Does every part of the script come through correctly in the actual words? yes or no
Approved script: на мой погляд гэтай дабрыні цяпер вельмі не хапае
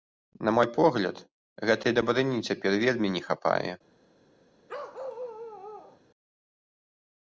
yes